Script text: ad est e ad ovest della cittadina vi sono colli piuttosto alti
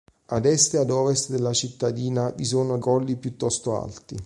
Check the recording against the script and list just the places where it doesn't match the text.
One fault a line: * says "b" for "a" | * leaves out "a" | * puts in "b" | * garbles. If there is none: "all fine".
all fine